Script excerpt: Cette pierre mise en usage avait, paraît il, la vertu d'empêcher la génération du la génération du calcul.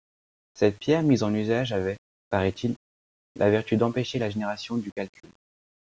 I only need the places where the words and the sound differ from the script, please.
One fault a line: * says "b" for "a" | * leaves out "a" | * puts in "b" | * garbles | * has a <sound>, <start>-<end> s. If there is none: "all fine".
* leaves out "la génération du"